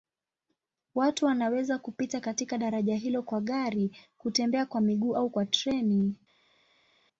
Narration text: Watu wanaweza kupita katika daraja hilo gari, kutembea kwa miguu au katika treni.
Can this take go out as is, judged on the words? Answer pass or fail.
fail